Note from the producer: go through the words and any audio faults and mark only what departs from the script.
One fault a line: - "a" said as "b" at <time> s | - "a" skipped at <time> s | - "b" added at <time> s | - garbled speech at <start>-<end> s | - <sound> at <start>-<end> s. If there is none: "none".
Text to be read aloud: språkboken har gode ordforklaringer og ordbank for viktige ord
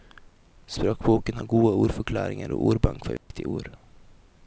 - dropout at 3.2-3.3 s